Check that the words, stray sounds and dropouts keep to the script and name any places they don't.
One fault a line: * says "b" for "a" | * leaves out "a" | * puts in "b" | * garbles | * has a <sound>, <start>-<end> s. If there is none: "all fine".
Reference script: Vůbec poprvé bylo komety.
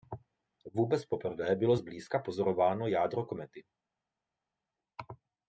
* puts in "zblízka pozorováno jádro"